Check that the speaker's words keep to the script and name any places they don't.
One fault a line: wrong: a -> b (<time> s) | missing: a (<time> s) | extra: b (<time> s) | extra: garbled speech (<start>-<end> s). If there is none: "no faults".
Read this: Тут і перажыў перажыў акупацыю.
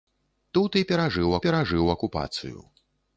no faults